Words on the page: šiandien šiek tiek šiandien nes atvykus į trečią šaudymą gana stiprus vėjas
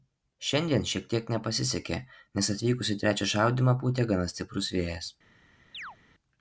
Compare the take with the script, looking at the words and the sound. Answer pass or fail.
fail